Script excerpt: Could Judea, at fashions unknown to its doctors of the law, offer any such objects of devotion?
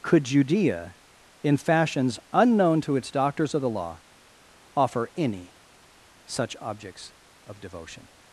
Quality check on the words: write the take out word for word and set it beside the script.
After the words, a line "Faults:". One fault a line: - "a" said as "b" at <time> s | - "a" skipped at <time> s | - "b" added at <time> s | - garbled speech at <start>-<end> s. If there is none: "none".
Could Judea, in fashions unknown to its doctors of the law, offer any such objects of devotion?
Faults:
- "at" said as "in" at 1.4 s